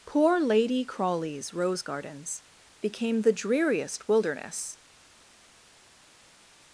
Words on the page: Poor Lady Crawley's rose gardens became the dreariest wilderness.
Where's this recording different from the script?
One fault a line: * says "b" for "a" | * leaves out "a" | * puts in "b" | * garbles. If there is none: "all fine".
all fine